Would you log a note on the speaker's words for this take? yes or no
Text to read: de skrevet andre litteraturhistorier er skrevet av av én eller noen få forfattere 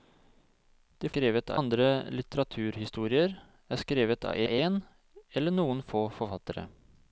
no